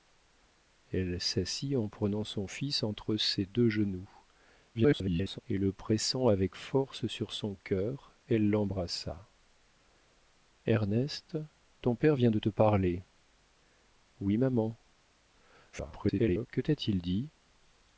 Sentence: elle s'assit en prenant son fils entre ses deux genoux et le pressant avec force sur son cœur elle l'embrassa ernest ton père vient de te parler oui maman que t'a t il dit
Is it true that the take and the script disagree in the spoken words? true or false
true